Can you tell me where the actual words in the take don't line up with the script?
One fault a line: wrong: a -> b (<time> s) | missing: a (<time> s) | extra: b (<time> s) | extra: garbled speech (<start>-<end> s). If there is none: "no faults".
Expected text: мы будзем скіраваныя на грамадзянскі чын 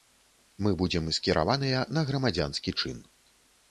no faults